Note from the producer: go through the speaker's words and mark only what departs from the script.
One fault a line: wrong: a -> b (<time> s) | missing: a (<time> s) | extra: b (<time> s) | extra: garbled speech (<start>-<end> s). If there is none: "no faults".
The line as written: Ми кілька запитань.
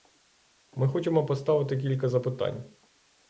extra: хочемо поставити (0.9 s)